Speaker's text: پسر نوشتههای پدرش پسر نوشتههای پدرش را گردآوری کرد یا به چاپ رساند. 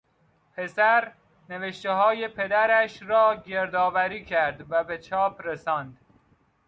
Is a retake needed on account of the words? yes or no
yes